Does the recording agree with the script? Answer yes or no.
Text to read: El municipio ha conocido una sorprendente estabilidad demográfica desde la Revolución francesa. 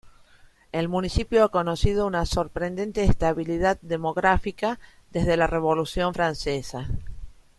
yes